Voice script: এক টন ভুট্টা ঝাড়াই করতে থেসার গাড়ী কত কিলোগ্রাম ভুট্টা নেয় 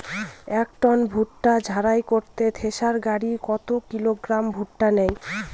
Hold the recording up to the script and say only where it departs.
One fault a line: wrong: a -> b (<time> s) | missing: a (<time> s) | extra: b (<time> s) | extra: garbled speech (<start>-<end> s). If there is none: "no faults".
no faults